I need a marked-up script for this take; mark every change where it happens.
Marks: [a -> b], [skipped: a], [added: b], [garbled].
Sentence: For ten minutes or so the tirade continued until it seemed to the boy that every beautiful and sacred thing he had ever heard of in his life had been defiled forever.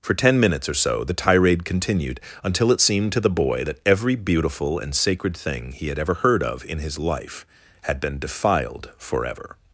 For ten minutes or so the tirade continued until it seemed to the boy that every beautiful and sacred thing he had ever heard of in his life had been defiled forever.